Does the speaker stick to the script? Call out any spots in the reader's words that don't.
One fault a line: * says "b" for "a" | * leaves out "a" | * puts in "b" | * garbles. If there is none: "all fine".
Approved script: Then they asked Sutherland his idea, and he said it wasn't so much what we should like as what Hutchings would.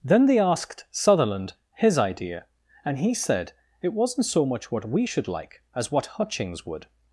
all fine